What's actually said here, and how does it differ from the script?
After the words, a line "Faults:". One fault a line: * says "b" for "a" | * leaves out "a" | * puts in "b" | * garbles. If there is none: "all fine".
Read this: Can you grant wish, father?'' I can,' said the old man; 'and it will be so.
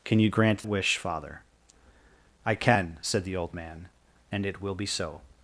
Can you grant wish, father?'' I can,' said the old man; 'and it will be so.
Faults:
all fine